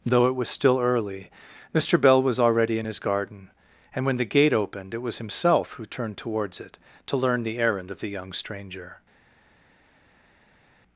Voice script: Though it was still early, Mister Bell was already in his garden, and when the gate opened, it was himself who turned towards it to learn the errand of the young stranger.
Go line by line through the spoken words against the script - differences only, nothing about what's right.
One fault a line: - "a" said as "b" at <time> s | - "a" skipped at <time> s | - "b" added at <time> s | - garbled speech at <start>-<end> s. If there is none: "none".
none